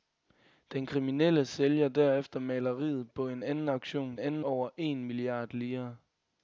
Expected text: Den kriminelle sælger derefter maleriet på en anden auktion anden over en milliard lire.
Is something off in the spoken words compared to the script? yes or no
no